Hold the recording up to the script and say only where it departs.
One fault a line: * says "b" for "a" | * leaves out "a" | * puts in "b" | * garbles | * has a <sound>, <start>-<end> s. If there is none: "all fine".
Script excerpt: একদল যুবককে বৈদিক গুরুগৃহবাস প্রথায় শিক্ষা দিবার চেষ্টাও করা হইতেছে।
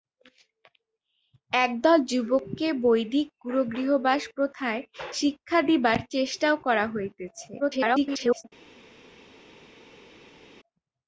* garbles